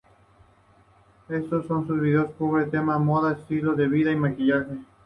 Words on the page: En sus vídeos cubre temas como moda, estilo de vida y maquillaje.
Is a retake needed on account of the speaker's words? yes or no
no